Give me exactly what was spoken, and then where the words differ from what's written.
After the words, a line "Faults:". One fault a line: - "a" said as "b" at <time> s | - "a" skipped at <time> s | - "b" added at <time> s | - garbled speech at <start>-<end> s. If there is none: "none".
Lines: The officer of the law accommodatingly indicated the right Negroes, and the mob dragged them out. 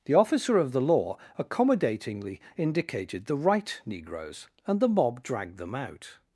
The officer of the law accommodatingly indicated the right Negroes, and the mob dragged them out.
Faults:
none